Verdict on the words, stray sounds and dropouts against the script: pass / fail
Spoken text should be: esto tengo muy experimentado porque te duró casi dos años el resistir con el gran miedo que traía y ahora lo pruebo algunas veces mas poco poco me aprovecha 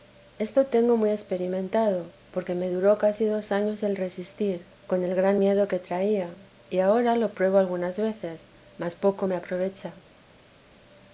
fail